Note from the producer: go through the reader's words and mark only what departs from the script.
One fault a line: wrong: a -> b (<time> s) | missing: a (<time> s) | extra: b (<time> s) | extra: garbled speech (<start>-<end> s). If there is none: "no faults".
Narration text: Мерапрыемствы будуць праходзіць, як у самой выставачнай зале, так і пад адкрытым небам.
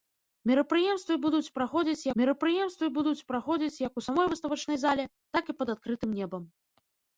extra: мерапрыемствы будуць праходзіць (2.2 s)